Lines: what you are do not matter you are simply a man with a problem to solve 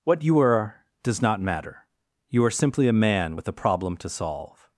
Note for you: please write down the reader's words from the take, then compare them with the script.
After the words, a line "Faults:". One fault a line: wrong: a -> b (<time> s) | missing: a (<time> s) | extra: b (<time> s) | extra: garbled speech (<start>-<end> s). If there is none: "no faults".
what you are does not matter you are simply a man with a problem to solve
Faults:
wrong: do -> does (1.0 s)